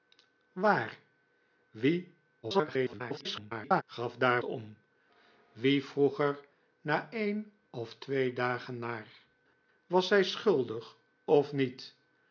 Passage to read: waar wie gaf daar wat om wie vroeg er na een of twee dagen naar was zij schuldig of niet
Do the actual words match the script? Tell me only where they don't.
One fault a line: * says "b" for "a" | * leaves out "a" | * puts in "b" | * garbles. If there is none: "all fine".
* garbles
* leaves out "wat"